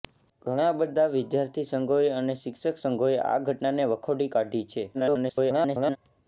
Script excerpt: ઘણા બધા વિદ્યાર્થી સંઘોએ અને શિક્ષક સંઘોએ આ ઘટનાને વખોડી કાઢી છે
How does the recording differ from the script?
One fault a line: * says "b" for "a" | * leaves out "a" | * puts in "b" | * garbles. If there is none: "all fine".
* garbles